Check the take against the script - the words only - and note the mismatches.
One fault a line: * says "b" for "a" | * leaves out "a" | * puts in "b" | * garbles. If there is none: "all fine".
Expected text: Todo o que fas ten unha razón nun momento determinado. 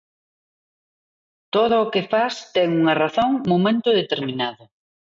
* leaves out "nun"